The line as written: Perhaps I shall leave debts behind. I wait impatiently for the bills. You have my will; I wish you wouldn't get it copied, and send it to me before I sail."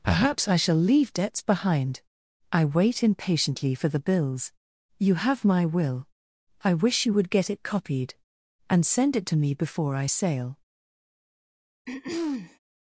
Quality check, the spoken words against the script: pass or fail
fail